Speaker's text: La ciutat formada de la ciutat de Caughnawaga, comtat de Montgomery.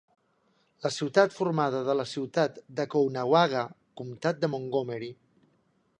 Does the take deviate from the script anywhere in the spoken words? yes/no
no